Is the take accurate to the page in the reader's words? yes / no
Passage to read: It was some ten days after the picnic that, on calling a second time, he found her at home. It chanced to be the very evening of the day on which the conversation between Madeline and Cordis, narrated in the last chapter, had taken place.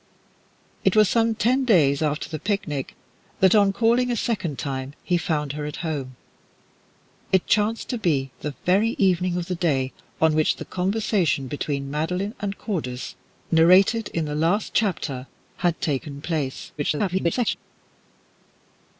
no